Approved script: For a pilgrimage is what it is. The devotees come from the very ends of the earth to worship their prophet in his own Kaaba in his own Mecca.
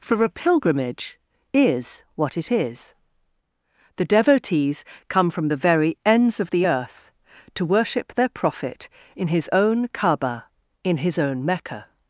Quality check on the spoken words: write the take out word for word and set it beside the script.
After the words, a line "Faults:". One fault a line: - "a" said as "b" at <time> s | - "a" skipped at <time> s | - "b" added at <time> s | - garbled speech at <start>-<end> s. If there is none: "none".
For a pilgrimage is what it is. The devotees come from the very ends of the earth to worship their prophet in his own Kaaba in his own Mecca.
Faults:
none